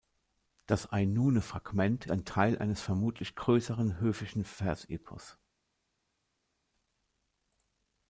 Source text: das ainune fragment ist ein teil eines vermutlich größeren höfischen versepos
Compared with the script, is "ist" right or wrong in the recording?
wrong